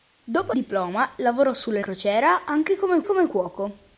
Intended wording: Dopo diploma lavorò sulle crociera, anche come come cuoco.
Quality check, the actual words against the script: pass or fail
pass